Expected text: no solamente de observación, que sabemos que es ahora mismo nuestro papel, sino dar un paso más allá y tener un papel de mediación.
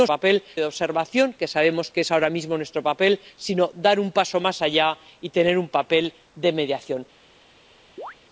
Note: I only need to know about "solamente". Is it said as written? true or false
false